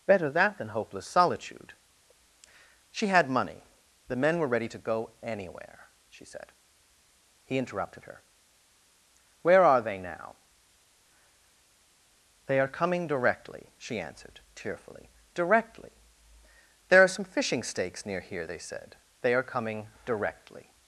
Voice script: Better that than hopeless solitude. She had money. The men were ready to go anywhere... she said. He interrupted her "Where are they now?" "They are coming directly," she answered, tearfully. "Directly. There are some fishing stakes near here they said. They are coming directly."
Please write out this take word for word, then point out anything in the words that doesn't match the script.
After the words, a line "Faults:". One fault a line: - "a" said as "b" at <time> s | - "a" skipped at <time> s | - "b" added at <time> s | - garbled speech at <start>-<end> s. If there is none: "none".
Better that than hopeless solitude. She had money. The men were ready to go anywhere... she said. He interrupted her "Where are they now?" "They are coming directly," she answered, tearfully. "Directly. There are some fishing stakes near here they said. They are coming directly."
Faults:
none